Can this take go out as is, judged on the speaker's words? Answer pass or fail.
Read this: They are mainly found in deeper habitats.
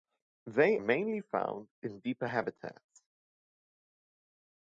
fail